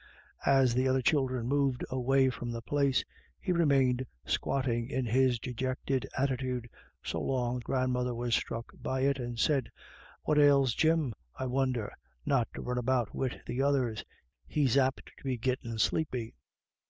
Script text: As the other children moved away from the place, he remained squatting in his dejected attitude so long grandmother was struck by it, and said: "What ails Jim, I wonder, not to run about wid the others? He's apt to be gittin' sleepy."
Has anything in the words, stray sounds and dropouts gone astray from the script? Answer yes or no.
no